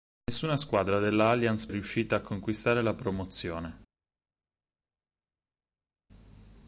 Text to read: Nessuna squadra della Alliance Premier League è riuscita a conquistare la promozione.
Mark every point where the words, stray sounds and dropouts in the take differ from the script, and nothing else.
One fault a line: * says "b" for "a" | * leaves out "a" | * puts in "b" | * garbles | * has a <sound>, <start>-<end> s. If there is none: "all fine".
* leaves out "Premier League"